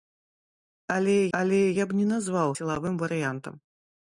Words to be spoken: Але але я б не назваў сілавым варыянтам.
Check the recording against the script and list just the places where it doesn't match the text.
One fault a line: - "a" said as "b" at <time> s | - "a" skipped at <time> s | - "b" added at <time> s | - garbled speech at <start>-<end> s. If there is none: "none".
none